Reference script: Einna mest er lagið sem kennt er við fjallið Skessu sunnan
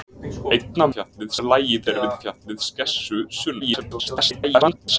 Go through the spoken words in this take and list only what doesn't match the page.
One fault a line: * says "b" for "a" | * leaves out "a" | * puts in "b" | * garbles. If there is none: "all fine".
* says "fjallið" for "mest"
* leaves out "sem kennt"
* garbles